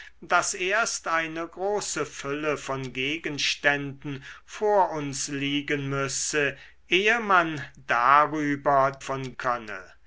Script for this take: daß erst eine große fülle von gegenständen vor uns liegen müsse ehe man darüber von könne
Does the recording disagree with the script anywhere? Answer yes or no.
no